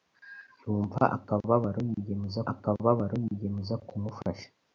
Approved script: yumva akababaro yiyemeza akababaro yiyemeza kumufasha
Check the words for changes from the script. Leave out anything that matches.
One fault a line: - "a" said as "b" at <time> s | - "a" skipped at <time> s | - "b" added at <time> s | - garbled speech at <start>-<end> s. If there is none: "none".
none